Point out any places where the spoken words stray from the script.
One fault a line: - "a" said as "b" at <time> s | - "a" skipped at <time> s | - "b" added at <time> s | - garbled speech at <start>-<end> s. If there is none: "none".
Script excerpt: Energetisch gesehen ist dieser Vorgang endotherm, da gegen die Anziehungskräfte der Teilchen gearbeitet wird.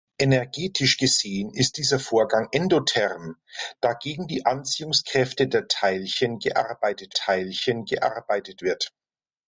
- "Teilchen gearbeitet" added at 7.1 s